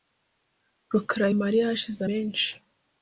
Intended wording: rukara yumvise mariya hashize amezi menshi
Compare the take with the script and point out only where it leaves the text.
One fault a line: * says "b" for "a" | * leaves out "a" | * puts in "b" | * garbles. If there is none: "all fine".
* leaves out "yumvise"
* leaves out "amezi"